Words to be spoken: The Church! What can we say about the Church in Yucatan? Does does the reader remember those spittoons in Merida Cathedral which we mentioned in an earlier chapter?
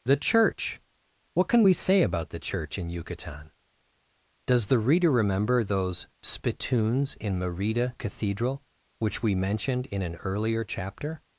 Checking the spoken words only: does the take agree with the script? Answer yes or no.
no